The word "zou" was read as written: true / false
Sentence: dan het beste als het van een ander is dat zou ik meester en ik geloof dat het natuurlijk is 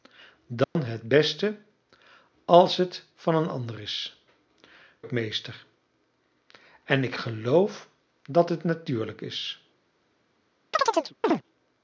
false